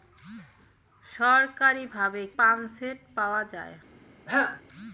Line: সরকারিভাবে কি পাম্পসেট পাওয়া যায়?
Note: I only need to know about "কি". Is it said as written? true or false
false